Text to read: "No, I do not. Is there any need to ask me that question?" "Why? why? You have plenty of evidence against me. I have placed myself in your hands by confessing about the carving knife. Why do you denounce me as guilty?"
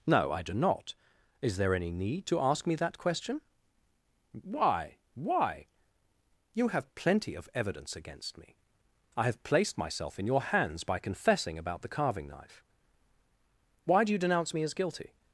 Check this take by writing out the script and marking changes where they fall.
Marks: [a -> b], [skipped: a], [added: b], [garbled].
"No, I do not. Is there any need to ask me that question?" "Why? why? You have plenty of evidence against me. I have placed myself in your hands by confessing about the carving knife. Why do you denounce me as guilty?"